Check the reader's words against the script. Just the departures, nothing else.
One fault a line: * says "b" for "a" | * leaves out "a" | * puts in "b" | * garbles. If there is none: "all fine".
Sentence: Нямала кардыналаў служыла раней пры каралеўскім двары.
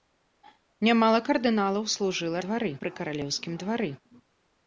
* says "двары" for "раней"